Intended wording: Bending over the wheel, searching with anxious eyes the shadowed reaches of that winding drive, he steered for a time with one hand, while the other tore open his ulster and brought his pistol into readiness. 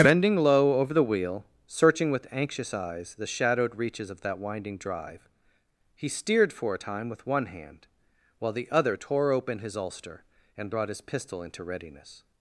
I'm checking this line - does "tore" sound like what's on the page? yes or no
yes